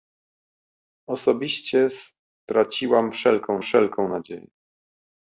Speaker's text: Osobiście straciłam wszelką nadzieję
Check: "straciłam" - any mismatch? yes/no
no